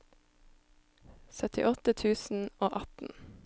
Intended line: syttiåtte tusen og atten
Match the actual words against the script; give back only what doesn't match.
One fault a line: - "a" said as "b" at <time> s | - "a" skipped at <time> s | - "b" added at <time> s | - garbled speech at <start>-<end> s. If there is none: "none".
none